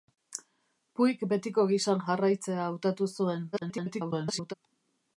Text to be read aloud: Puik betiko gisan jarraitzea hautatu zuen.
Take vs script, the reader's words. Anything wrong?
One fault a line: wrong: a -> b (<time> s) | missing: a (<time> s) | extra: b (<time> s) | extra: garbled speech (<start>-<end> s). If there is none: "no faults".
extra: garbled speech (3.5-4.5 s)